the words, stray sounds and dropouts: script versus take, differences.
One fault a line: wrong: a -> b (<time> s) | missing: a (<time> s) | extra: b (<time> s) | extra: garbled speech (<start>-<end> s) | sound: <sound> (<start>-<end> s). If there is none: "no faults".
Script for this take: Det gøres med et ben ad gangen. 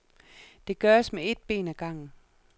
no faults